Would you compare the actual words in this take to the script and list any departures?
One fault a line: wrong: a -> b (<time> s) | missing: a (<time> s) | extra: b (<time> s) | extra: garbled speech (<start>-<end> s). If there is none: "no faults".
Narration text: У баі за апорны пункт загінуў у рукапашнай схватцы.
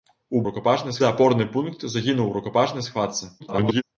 wrong: баі -> рукапашнай (0.5 s)
extra: garbled speech (3.4-3.8 s)